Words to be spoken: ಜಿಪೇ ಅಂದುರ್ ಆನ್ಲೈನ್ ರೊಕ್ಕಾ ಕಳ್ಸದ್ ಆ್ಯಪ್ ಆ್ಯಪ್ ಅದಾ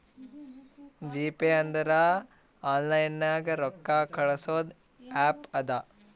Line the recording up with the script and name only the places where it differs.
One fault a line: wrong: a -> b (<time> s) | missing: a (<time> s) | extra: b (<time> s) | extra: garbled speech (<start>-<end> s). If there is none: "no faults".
extra: ನಾಗ್ (3.2 s)
missing: ಆ್ಯಪ್ (5.5 s)